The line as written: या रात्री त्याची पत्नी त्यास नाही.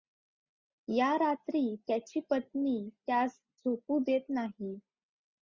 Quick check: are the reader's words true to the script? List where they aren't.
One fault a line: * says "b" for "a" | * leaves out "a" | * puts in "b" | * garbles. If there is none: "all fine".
* puts in "झोपू देत"